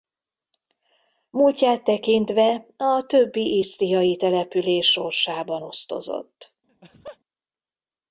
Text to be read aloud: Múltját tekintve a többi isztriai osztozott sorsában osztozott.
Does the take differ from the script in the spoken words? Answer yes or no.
yes